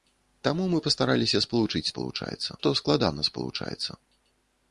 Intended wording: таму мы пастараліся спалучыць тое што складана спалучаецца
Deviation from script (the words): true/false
true